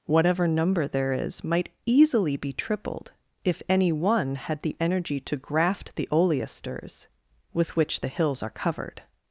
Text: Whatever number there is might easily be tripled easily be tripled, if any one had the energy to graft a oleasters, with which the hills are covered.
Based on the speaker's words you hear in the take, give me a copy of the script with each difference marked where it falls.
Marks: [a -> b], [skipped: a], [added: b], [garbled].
Whatever number there is might easily be tripled [skipped: easily be tripled,] if any one had the energy to graft [a -> the] oleasters, with which the hills are covered.